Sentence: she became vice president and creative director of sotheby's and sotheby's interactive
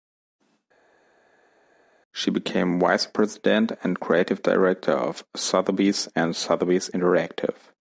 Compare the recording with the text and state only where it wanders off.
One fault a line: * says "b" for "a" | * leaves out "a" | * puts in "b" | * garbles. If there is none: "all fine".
all fine